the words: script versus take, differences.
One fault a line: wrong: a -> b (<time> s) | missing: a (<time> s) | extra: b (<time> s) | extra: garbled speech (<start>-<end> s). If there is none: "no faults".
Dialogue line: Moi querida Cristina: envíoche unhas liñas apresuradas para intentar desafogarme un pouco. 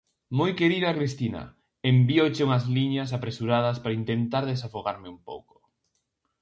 no faults